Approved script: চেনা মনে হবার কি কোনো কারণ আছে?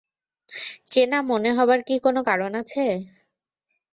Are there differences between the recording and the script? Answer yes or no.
no